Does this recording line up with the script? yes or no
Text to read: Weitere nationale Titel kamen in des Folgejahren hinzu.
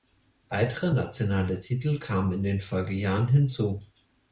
no